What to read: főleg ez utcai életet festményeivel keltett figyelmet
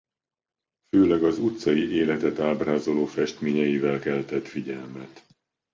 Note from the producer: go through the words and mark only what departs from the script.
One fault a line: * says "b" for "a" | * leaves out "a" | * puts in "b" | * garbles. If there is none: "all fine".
* says "az" for "ez"
* puts in "ábrázoló"